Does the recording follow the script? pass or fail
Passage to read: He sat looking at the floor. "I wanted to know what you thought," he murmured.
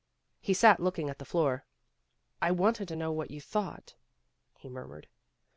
pass